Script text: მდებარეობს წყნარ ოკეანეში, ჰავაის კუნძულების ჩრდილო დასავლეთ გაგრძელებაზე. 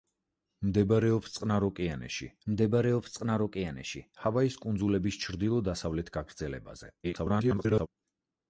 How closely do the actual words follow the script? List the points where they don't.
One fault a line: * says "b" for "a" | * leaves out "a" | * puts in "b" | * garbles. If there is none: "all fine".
* puts in "მდებარეობს წყნარ ოკეანეში"
* garbles